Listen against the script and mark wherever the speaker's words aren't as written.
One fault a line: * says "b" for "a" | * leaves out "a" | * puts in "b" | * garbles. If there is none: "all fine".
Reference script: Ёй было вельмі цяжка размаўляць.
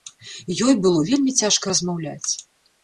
all fine